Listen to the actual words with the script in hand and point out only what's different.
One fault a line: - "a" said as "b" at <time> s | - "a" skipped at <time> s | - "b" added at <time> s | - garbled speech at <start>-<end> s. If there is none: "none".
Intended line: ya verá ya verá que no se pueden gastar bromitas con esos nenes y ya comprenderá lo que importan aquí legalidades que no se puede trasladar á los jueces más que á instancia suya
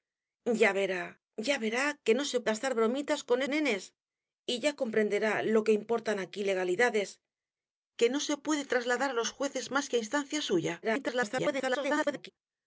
- "pueden" skipped at 2.4 s
- "esos" skipped at 3.4 s
- garbled speech at 10.8-12.3 s